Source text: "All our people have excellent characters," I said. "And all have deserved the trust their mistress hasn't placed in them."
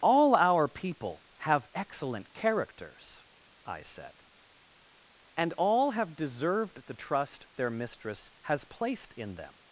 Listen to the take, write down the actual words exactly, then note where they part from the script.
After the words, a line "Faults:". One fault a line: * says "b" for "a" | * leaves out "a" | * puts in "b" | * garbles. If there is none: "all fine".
"All our people have excellent characters," I said. "And all have deserved the trust their mistress has placed in them."
Faults:
* says "has" for "hasn't"